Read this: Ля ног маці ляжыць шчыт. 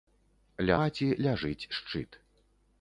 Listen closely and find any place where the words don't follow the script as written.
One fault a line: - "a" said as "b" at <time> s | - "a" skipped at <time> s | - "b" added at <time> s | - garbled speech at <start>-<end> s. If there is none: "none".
- "ног" skipped at 0.8 s